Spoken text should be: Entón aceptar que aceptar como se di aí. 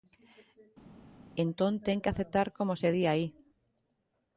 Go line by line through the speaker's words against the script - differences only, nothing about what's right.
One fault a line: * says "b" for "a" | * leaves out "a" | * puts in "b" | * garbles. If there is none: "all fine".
* says "ten" for "aceptar"